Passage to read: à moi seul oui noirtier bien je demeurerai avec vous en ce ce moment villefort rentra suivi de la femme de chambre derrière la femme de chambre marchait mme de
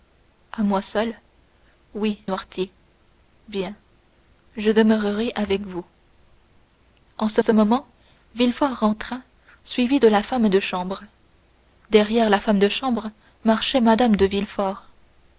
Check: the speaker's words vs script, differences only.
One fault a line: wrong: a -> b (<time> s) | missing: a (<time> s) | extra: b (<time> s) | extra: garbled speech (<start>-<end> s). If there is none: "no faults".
no faults